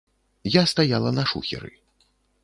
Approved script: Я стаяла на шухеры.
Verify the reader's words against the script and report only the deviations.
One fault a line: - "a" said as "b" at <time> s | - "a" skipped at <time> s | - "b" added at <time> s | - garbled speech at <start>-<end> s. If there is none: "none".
none